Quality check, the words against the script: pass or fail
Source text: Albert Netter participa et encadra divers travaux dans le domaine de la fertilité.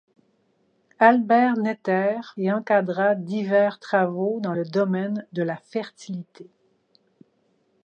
fail